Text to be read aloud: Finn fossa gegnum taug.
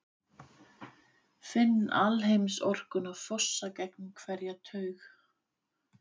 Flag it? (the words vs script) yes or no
yes